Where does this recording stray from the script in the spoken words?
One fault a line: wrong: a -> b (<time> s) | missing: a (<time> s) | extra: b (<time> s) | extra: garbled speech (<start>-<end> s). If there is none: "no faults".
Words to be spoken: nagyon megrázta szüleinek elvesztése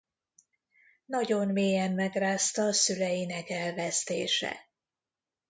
extra: mélyen (1.5 s)